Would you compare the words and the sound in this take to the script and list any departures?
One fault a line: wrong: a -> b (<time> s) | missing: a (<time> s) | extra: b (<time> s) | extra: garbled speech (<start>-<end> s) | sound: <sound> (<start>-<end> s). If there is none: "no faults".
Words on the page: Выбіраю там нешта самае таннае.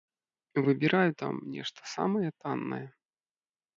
no faults